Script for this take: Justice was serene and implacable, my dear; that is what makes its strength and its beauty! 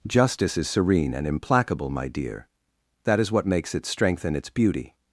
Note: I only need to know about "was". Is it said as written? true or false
false